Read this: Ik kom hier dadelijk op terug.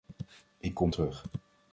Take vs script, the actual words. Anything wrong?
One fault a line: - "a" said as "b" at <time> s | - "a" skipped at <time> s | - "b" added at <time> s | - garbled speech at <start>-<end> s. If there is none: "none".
- "hier dadelijk op" skipped at 0.9 s